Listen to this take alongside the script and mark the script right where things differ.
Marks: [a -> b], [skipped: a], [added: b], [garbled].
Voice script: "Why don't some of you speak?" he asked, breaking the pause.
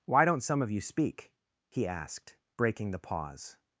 "Why don't some of you speak?" he asked, breaking the pause.